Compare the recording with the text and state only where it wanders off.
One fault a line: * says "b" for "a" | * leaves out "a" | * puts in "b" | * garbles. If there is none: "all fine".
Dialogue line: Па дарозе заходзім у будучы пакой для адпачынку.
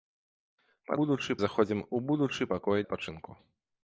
* says "будучы" for "дарозе"
* leaves out "для"